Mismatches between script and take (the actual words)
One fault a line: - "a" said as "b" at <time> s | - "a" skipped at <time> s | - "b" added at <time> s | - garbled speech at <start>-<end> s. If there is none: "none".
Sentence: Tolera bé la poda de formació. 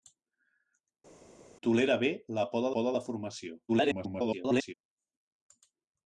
- "poda" added at 2.8 s
- garbled speech at 3.7-4.7 s